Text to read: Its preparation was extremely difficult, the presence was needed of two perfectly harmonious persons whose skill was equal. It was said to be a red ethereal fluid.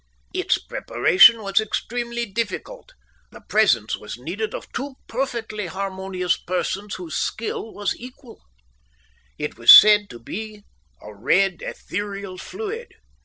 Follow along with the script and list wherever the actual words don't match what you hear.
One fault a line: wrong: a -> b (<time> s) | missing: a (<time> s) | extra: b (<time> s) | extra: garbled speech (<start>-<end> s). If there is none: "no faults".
no faults